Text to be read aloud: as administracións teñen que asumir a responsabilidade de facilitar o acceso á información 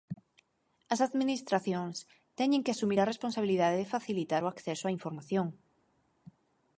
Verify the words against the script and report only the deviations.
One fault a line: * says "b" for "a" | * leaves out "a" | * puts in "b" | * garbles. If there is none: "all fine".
all fine